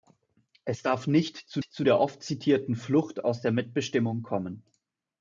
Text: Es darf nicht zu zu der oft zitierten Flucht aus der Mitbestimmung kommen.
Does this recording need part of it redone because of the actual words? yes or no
no